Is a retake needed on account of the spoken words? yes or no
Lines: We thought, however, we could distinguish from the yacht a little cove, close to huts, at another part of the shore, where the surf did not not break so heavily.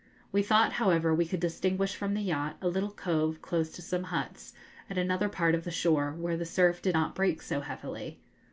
yes